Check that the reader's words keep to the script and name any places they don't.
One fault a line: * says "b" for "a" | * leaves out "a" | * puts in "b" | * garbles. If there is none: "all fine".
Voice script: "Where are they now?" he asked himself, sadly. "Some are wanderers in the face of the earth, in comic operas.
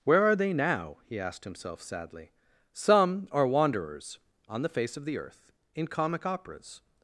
* says "on" for "in"